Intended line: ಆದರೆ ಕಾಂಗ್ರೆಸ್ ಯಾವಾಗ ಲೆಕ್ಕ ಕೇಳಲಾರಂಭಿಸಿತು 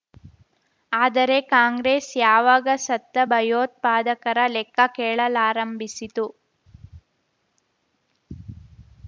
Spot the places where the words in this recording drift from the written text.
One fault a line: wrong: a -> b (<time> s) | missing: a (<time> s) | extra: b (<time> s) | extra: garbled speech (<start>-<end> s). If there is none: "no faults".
extra: ಸತ್ತ ಭಯೋತ್ಪಾದಕರ (2.9 s)